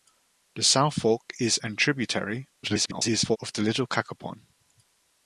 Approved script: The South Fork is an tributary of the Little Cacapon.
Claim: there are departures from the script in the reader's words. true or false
true